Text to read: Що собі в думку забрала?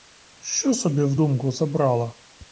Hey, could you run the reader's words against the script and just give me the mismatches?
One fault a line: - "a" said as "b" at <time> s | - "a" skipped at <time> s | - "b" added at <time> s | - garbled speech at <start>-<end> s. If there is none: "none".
none